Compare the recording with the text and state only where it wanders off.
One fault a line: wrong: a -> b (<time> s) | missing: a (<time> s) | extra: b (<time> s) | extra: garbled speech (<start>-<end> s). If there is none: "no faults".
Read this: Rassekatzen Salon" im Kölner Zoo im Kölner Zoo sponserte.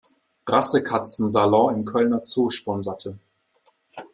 missing: im Kölner Zoo (2.5 s)